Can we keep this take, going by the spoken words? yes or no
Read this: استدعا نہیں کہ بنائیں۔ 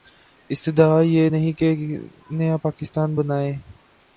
no